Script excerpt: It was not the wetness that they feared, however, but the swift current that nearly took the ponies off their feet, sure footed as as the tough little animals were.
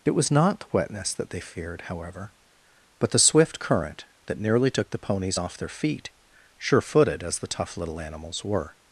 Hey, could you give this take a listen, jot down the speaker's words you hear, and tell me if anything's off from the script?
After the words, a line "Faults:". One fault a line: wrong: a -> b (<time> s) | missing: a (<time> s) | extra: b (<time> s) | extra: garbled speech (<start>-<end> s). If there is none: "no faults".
It was not the wetness that they feared, however, but the swift current that nearly took the ponies off their feet, sure footed as the tough little animals were.
Faults:
missing: as (7.4 s)